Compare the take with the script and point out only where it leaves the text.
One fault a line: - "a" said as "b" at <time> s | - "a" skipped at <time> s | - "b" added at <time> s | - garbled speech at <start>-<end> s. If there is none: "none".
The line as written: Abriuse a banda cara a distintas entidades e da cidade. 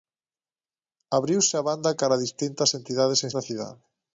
none